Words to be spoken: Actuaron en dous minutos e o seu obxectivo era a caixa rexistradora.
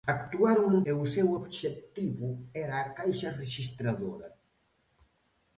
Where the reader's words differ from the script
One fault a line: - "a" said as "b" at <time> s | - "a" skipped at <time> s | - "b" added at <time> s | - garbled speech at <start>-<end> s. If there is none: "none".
- "dous minutos" skipped at 0.8 s